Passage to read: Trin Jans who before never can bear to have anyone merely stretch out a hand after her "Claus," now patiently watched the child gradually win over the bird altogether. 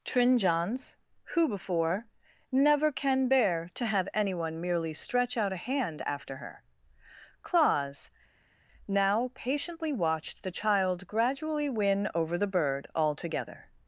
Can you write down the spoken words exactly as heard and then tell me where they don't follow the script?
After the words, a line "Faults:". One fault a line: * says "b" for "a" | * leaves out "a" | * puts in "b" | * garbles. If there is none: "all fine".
Trin Jans who before never can bear to have anyone merely stretch out a hand after her "Claus," now patiently watched the child gradually win over the bird altogether.
Faults:
all fine